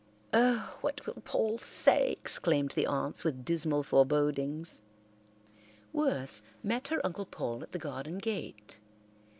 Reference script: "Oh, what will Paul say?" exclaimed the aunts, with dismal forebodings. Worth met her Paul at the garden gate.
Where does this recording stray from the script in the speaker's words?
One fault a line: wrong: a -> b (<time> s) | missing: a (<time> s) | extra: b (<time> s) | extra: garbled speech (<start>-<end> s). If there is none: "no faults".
extra: Uncle (7.0 s)